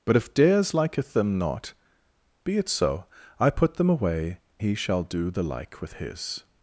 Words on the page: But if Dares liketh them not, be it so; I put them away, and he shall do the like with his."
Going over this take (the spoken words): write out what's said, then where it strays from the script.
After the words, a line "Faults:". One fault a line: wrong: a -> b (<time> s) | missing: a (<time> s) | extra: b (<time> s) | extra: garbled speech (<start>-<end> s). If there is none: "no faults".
But if Dares liketh them not, be it so; I put them away, he shall do the like with his."
Faults:
missing: and (4.4 s)